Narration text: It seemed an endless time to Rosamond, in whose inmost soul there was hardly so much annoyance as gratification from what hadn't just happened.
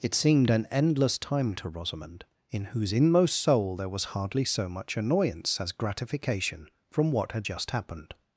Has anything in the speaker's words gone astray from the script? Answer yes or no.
yes